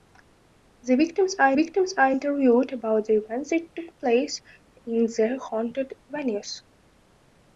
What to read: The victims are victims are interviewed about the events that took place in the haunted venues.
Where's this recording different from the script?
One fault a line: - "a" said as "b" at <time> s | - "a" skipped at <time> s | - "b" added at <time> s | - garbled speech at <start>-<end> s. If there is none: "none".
none